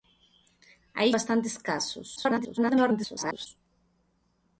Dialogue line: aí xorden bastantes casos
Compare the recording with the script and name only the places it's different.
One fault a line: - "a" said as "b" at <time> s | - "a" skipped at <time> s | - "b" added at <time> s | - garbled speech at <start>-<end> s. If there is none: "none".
- "xorden" skipped at 1.1 s
- garbled speech at 2.2-3.5 s